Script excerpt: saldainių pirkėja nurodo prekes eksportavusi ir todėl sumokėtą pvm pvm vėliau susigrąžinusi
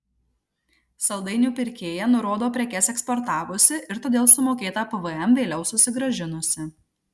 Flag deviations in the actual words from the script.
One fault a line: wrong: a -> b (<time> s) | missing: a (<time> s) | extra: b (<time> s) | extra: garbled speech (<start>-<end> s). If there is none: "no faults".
missing: pvm (5.4 s)